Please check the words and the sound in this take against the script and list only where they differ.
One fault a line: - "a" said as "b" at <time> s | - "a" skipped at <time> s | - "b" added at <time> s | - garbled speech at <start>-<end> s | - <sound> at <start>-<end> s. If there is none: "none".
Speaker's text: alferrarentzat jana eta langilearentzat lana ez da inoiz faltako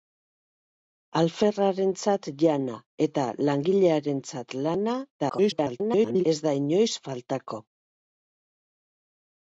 - garbled speech at 5.2-6.2 s